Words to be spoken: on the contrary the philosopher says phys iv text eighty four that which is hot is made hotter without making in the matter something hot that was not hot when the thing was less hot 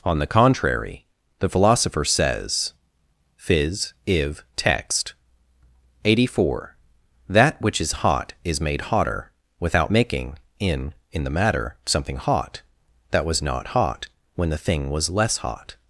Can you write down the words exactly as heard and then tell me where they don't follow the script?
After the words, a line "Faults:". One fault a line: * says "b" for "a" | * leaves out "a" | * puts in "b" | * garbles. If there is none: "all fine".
on the contrary the philosopher says phys iv text eighty four that which is hot is made hotter without making in in the matter something hot that was not hot when the thing was less hot
Faults:
* puts in "in"